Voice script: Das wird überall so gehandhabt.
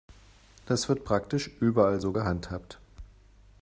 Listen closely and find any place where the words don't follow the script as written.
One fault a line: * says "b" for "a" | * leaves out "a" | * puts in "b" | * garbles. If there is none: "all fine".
* puts in "praktisch"